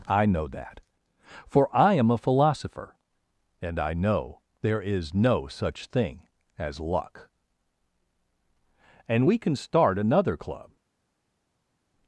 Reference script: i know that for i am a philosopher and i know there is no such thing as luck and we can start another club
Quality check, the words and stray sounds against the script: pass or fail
pass